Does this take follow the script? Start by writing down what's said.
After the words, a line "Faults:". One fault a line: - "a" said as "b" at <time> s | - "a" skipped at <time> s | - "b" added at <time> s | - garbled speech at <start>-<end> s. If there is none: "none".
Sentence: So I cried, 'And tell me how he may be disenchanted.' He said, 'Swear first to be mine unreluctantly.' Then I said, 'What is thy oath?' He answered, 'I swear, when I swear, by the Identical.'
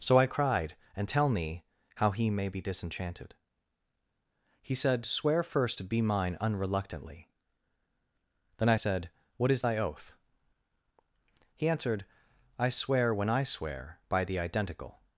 So I cried, 'And tell me how he may be disenchanted.' He said, 'Swear first to be mine unreluctantly.' Then I said, 'What is thy oath?' He answered, 'I swear, when I swear, by the Identical.'
Faults:
none